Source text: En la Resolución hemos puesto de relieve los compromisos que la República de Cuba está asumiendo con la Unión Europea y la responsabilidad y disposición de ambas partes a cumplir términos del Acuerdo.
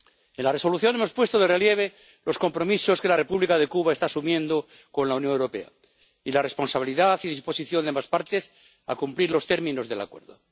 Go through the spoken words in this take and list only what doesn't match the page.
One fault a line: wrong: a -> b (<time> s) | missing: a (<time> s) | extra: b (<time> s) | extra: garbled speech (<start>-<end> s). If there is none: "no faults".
extra: los (9.3 s)